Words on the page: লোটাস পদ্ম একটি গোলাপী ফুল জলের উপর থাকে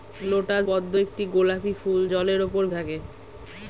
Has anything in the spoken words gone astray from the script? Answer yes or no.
no